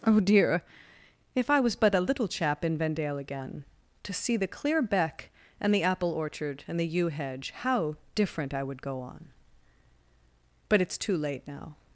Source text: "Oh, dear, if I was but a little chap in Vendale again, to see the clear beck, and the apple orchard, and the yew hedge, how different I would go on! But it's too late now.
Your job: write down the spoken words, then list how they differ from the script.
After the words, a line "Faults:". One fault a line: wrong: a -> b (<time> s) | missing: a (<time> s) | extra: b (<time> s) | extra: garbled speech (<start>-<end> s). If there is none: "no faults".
"Oh, dear, if I was but a little chap in Vendale again, to see the clear beck, and the apple orchard, and the yew hedge, how different I would go on! But it's too late now.
Faults:
no faults